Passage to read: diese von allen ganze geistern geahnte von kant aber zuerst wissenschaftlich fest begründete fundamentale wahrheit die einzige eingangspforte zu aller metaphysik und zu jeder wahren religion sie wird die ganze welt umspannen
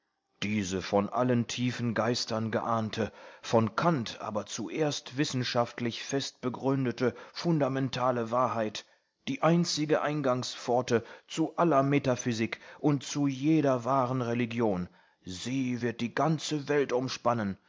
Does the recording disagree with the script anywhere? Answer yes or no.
yes